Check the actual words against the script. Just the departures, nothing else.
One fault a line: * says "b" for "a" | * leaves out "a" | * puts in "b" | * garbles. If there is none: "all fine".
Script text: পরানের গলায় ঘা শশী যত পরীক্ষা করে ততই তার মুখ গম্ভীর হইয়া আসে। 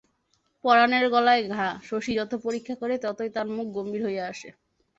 all fine